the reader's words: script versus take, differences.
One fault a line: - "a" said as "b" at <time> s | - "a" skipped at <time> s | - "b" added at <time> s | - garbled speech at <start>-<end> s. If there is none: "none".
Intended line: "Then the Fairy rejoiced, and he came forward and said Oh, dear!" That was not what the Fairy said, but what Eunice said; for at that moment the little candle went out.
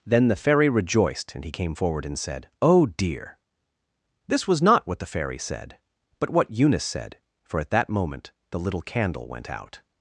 - "That" said as "This" at 4.3 s